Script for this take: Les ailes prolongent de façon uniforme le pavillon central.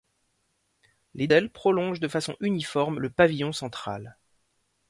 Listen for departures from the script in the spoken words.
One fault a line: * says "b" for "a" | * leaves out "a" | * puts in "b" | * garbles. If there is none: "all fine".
all fine